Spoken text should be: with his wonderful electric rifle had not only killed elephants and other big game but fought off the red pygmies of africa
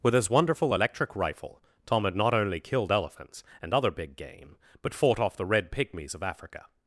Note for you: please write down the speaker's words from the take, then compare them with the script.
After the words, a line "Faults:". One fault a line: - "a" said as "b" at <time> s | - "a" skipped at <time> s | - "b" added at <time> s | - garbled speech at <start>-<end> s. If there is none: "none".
with his wonderful electric rifle tom had not only killed elephants and other big game but fought off the red pygmies of africa
Faults:
- "tom" added at 1.9 s